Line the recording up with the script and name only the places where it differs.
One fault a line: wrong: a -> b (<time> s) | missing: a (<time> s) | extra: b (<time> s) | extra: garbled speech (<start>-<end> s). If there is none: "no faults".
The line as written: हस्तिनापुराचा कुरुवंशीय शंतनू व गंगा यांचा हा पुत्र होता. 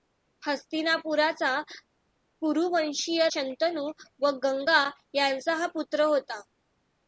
no faults